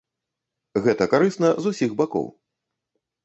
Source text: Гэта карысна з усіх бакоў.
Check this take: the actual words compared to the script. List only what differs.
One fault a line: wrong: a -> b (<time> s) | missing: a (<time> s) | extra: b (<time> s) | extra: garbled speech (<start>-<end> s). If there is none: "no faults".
no faults